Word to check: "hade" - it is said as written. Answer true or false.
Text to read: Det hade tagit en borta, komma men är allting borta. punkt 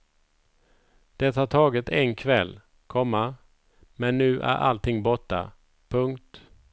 false